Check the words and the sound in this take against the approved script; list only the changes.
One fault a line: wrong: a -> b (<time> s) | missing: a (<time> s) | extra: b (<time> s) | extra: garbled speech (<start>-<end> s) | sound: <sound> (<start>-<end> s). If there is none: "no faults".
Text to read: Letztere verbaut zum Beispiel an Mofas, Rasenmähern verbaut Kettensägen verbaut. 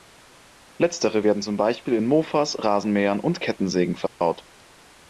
wrong: verbaut -> werden (1.2 s)
wrong: an -> in (1.9 s)
wrong: verbaut -> und (3.2 s)
sound: dropout (4.1-4.2 s)